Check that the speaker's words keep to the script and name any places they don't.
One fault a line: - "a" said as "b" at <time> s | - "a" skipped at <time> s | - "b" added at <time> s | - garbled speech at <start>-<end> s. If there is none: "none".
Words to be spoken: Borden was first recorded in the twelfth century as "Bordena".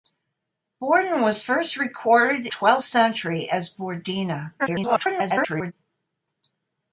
- "in the" skipped at 2.5 s
- garbled speech at 4.6-5.7 s